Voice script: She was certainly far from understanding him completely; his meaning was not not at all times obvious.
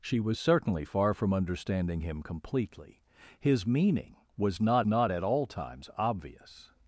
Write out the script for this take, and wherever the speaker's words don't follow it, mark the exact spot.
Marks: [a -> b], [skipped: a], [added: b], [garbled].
She was certainly far from understanding him completely; his meaning was not not at all times obvious.